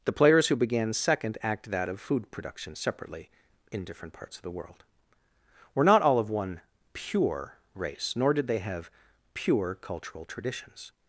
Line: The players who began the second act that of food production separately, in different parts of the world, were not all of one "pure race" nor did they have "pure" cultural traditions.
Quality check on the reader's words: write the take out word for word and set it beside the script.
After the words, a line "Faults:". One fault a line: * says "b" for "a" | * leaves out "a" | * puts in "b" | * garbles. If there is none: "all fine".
The players who began second act that of food production separately, in different parts of the world, were not all of one "pure race" nor did they have "pure" cultural traditions.
Faults:
* leaves out "the"